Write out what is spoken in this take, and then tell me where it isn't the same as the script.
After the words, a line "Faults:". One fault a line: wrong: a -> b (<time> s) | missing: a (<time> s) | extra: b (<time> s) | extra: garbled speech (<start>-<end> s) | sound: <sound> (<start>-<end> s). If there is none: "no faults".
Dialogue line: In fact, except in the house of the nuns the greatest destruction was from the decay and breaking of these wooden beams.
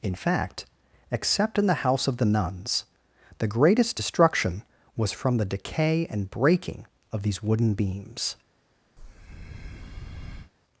In fact, except in the house of the nuns the greatest destruction was from the decay and breaking of these wooden beams.
Faults:
sound: breath (9.0-10.5 s)